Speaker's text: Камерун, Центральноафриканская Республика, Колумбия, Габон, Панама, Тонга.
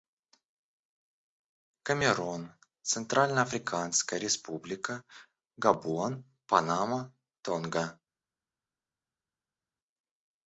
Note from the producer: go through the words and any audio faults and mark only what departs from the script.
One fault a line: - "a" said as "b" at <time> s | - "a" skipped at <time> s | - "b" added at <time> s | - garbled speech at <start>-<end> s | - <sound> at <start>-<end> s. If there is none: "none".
- "Колумбия" skipped at 5.0 s